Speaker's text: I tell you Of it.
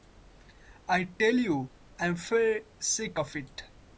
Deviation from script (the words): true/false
true